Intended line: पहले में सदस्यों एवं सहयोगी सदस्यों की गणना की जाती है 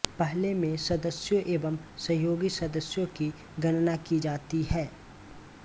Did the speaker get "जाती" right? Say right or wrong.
right